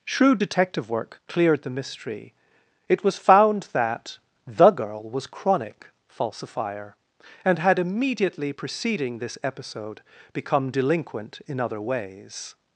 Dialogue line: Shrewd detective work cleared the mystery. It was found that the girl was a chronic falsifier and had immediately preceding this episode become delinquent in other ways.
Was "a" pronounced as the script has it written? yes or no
no